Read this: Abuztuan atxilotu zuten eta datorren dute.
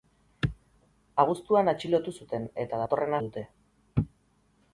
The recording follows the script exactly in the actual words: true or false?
true